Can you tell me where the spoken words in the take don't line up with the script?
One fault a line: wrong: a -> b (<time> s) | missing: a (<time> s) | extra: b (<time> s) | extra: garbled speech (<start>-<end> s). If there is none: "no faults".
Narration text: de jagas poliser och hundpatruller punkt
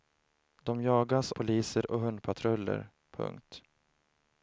no faults